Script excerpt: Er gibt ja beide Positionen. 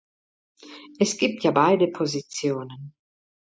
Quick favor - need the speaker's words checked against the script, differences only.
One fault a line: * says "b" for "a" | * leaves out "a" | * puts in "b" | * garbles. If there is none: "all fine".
* says "Es" for "Er"